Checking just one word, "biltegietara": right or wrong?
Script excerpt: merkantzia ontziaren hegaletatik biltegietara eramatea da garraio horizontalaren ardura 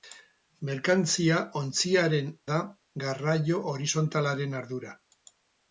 wrong